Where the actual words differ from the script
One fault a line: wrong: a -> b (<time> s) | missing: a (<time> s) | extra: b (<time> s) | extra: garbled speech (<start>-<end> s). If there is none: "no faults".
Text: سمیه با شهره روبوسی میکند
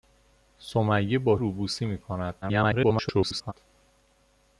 missing: شهره (1.4 s)
extra: garbled speech (2.4-3.5 s)